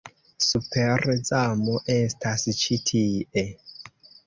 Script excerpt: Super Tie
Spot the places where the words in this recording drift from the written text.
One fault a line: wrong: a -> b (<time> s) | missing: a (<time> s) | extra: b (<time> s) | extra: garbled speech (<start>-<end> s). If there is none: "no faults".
extra: Zamo estas ĉi (1.3 s)